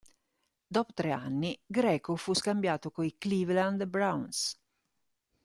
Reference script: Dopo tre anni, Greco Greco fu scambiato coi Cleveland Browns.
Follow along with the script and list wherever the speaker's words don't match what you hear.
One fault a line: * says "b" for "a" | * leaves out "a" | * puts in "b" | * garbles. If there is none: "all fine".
* leaves out "Greco"